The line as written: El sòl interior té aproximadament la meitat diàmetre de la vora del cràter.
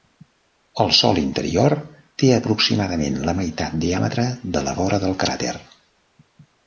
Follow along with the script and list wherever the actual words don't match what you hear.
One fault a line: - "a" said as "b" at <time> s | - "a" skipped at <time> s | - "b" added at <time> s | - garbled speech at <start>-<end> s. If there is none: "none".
none